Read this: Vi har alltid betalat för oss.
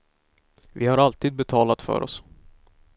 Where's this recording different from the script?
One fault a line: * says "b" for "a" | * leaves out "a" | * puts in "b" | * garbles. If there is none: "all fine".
all fine